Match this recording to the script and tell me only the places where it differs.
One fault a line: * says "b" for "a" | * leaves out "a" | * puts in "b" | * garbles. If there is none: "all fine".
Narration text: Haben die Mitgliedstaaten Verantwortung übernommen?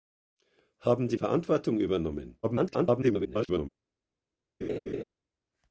* leaves out "Mitgliedstaaten"
* garbles